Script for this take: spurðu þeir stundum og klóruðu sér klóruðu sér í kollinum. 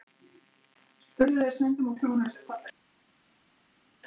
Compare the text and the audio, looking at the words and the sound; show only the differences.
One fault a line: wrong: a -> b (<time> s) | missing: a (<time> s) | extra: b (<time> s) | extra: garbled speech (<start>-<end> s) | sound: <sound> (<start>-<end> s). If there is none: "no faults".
missing: klóruðu sér (2.4 s)